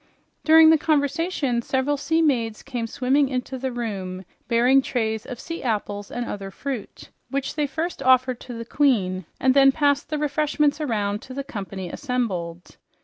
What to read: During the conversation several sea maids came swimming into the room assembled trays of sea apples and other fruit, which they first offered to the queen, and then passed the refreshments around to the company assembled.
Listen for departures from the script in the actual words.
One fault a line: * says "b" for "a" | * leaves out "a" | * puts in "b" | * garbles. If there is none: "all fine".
* says "bearing" for "assembled"